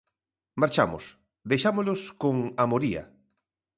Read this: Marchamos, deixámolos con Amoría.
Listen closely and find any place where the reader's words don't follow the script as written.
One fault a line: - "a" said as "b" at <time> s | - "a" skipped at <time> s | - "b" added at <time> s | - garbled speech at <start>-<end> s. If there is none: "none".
none